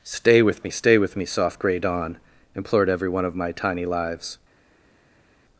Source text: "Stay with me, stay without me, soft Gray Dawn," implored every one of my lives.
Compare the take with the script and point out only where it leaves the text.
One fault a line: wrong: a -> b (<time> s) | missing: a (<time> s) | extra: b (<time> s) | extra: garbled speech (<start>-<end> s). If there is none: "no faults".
wrong: without -> with (1.0 s)
extra: tiny (3.5 s)